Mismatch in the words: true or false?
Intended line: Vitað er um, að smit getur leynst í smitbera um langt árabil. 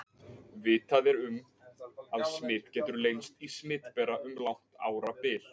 false